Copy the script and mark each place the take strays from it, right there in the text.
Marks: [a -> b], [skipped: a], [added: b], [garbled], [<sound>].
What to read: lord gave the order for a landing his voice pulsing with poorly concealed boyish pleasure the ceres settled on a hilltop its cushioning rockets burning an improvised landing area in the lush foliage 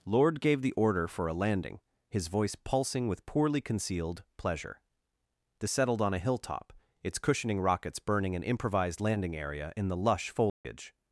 lord gave the order for a landing his voice pulsing with poorly concealed [skipped: boyish] pleasure the [skipped: ceres] settled on a hilltop its cushioning rockets burning an improvised landing area in the lush foliage [dropout]